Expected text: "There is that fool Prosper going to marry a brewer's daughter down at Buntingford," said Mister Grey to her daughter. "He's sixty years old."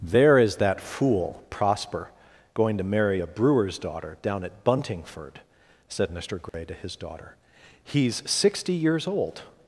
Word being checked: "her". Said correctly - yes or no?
no